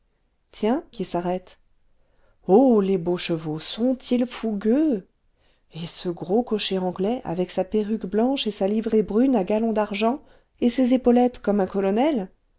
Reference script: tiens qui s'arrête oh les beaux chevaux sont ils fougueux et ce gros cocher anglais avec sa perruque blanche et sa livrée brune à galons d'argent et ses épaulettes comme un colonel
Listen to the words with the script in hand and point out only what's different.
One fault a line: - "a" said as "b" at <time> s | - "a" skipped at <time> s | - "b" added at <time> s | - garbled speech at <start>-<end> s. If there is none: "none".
none